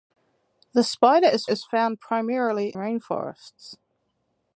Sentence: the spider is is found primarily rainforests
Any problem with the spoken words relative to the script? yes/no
no